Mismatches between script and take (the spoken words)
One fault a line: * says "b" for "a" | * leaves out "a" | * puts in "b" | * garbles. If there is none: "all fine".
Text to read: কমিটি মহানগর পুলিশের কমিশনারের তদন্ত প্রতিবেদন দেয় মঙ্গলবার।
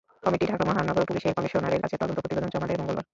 * puts in "ঢাকা"
* puts in "কাছে"
* puts in "জমা"